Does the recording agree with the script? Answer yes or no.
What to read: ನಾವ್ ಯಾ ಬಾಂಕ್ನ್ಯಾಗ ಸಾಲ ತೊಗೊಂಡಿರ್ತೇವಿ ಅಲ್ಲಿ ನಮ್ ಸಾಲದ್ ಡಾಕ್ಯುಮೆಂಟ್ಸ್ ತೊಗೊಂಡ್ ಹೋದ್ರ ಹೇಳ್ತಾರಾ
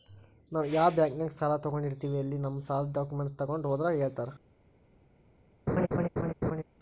yes